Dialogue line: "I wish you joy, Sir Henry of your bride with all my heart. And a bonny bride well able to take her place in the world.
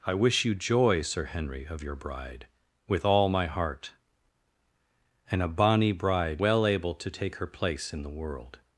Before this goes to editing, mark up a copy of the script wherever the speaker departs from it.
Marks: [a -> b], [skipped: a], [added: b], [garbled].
"I wish you joy, Sir Henry of your bride with all my heart. And a bonny bride well able to take her place in the world.